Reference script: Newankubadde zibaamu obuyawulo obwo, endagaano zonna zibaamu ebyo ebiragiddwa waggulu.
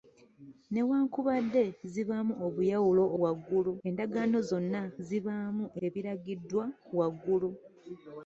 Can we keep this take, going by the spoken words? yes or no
no